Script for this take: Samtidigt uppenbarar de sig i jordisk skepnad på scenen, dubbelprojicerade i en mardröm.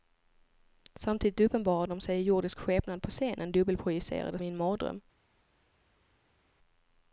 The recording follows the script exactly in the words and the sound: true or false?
true